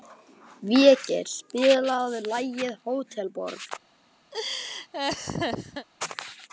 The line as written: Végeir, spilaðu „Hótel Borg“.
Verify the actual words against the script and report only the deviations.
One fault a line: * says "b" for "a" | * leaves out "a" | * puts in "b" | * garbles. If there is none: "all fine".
* puts in "lagið"